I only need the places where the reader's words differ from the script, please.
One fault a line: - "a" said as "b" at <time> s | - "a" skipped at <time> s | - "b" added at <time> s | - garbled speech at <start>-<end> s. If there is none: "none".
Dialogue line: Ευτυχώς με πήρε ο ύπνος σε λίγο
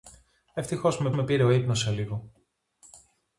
- "με" added at 1.1 s